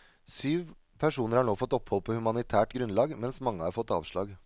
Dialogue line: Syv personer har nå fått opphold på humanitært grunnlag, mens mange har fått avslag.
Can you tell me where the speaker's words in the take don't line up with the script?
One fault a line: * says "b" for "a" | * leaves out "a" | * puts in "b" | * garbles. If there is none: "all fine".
all fine